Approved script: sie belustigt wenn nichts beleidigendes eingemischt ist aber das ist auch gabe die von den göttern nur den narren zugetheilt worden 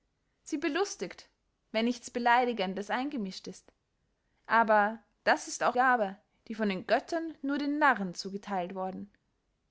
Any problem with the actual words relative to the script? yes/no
no